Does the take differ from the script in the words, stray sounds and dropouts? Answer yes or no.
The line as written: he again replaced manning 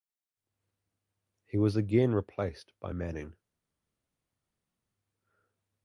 yes